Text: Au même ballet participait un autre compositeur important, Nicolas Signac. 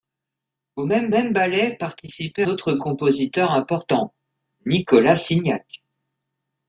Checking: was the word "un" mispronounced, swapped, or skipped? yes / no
yes